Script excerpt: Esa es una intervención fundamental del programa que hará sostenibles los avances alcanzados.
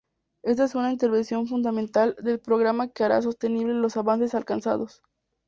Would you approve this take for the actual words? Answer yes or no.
no